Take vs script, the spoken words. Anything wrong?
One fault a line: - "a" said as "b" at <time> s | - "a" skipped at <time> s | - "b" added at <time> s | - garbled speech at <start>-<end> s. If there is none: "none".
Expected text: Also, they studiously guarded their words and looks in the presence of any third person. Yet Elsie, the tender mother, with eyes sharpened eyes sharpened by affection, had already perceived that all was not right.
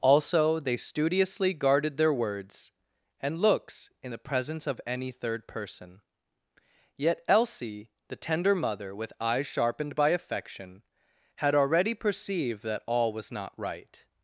- "eyes sharpened" skipped at 10.0 s